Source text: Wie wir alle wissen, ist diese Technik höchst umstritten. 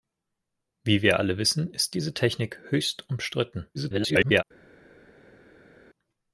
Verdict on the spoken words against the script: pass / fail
fail